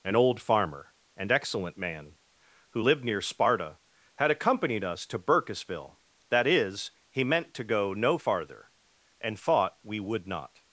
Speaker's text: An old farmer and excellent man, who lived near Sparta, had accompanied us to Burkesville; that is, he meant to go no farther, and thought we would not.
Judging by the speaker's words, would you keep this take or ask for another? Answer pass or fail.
pass